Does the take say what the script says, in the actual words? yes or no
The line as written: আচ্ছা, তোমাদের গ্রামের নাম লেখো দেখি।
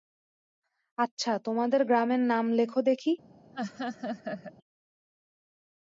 yes